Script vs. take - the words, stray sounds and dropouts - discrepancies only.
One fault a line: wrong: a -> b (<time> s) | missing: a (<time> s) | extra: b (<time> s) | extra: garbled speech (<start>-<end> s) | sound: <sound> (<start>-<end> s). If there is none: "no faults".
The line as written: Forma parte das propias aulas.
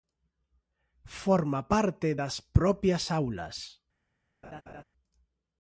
sound: laugh (4.4-4.8 s)